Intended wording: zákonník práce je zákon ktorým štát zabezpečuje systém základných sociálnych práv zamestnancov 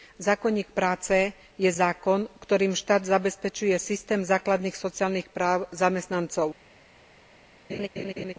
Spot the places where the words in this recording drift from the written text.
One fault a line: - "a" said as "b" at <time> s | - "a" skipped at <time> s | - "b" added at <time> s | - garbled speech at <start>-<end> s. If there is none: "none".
none